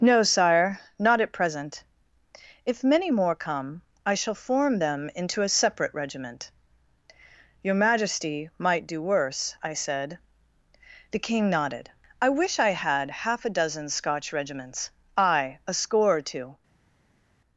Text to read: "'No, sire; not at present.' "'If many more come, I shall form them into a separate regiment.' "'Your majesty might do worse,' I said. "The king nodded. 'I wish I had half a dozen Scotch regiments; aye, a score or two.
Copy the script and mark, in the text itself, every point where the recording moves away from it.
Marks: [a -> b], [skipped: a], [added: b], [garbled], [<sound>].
"'No, sire; not at present.' "'If many more come, I shall form them into a separate regiment.' "'Your majesty might do worse,' I said. "The king nodded. 'I wish I had half a dozen Scotch regiments; aye, a score or two.